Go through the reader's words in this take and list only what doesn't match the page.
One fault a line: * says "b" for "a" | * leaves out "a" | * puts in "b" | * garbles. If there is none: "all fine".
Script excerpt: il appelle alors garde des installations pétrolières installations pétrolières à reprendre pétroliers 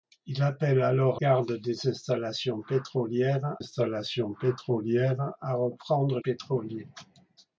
all fine